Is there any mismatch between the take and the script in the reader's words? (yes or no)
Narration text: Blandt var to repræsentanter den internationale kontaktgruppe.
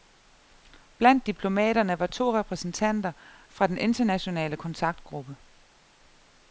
yes